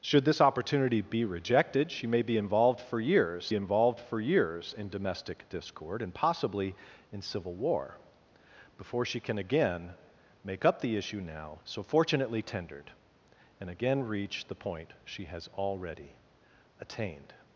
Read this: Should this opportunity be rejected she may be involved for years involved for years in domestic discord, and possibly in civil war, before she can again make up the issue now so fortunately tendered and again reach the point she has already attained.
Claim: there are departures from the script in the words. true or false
false